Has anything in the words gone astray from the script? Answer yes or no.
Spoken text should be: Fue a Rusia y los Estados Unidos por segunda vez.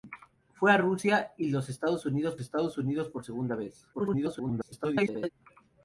yes